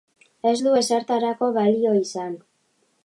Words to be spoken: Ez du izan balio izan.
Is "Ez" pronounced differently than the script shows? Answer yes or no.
no